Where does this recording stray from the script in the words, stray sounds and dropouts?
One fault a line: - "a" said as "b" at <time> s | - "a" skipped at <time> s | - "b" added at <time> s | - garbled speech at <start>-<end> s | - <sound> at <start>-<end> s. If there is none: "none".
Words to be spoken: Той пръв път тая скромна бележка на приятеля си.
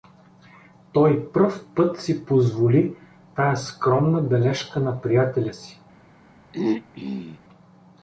- "си позволи" added at 2.0 s
- throat clearing at 6.5-7.4 s